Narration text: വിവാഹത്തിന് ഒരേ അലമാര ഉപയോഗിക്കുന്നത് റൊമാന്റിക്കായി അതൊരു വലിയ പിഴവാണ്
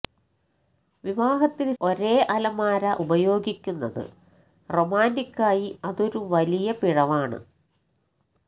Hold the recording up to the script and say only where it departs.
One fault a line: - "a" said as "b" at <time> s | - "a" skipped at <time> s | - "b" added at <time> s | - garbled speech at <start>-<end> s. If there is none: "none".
none